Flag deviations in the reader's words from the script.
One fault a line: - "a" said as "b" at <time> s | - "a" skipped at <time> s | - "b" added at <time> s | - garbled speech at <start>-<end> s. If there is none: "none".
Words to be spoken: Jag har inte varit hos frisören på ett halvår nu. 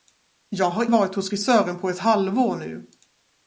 - "inte" skipped at 0.9 s